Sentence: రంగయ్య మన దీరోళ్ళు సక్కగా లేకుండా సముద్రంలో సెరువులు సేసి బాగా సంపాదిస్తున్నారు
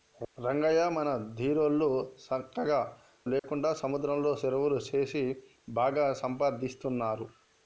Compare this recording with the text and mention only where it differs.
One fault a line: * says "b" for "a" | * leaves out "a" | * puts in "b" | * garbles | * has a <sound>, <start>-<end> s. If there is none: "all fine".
* has a dropout, 3.4-3.4 s